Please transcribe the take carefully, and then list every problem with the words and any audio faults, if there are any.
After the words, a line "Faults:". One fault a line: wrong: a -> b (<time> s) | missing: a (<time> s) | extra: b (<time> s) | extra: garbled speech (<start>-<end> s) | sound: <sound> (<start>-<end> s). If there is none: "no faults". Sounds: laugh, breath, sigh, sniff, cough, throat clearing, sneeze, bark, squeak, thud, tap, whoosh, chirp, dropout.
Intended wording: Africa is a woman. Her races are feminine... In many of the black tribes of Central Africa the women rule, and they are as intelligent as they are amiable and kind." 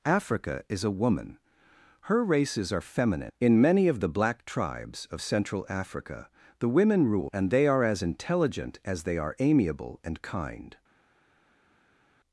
Africa is a woman. Her races are feminine... In many of the black tribes of Central Africa the women rule, and they are as intelligent as they are amiable and kind."
Faults:
no faults